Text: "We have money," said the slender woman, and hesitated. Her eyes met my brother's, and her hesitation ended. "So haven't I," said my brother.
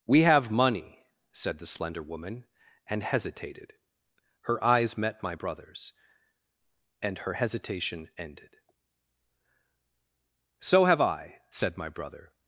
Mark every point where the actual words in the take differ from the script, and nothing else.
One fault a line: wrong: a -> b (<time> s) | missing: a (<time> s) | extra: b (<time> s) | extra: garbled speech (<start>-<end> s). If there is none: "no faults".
wrong: haven't -> have (10.8 s)